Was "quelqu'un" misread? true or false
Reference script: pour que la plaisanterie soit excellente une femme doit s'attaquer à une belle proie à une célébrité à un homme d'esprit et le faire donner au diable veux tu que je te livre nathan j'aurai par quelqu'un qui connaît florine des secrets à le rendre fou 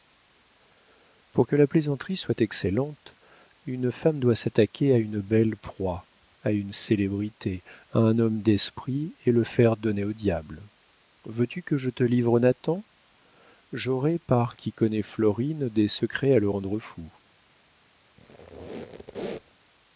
true